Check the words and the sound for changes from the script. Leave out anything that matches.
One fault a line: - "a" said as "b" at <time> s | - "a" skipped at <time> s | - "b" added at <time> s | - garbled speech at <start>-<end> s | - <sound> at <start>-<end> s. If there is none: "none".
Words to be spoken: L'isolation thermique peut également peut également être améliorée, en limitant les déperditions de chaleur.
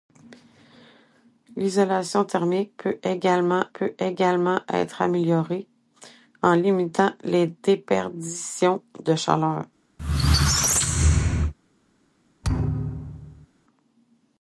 - squeak at 10.0-11.5 s
- thud at 12.4-13.5 s